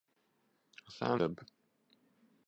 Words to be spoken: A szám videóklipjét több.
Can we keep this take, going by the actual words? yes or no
no